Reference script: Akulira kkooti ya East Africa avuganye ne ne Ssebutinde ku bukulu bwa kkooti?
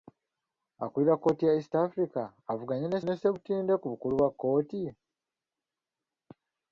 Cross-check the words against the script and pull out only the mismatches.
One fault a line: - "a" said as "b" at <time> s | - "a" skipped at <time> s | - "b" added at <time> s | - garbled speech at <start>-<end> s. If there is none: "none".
none